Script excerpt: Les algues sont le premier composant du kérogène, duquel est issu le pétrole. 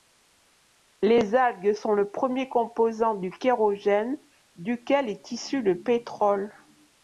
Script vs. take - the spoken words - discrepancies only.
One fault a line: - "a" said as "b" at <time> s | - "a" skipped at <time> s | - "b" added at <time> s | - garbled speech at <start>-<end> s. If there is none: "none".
none